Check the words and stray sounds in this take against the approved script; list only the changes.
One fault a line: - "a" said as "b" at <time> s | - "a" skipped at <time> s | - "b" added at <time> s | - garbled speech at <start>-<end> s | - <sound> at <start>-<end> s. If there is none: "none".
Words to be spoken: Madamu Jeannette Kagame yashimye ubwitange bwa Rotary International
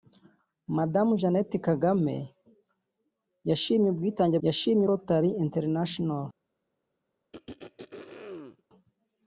- "bwa" said as "yashimye" at 4.5 s
- throat clearing at 7.3-8.6 s